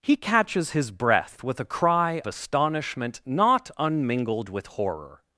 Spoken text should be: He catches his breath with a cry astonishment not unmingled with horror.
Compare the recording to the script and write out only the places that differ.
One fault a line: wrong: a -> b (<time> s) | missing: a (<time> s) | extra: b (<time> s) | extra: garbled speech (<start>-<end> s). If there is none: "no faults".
no faults